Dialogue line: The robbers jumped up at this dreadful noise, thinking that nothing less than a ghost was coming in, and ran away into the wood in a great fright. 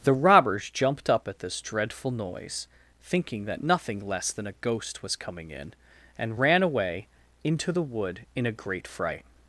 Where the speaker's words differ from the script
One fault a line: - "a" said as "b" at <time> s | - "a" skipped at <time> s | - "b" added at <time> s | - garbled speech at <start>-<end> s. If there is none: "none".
none